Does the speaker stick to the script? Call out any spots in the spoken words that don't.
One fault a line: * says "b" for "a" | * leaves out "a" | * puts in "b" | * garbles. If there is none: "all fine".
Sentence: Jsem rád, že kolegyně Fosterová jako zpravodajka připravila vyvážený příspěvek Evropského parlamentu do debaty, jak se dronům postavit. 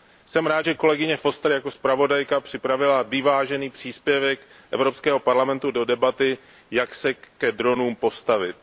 * puts in "ke"